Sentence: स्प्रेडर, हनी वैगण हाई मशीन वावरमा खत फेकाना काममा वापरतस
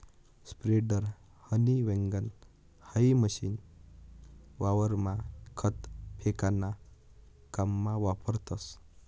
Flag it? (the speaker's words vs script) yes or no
no